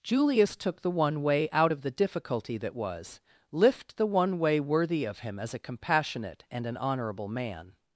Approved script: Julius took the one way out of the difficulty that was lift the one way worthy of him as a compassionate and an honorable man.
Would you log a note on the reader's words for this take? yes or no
no